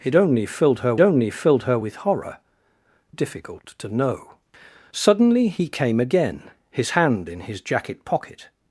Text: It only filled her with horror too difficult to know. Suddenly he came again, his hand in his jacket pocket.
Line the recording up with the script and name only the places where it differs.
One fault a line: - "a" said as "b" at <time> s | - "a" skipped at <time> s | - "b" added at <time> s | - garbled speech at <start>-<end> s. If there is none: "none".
- "only filled her" added at 1.0 s
- "too" skipped at 2.4 s